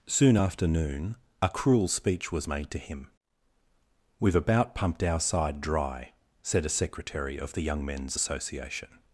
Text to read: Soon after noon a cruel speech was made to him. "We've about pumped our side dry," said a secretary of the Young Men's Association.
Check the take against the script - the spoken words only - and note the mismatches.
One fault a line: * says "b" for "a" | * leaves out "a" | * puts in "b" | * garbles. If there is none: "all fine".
all fine